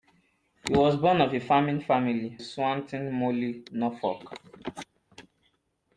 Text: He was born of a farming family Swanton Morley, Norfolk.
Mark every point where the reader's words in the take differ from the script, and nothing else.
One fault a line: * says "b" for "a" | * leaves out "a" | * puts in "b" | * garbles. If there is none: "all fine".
all fine